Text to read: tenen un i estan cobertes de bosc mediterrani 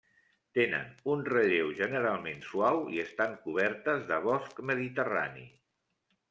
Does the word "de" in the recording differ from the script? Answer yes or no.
no